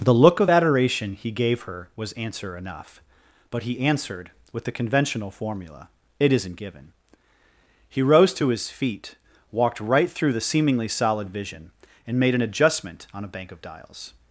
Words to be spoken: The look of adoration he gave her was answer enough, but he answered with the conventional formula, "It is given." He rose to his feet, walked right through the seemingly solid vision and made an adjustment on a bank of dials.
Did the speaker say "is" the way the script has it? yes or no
no